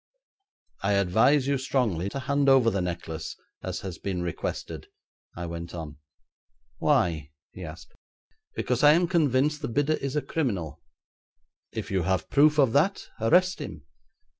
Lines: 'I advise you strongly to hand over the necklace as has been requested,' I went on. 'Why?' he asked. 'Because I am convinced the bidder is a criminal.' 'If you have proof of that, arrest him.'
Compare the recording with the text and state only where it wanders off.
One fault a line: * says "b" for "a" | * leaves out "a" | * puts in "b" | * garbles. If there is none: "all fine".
all fine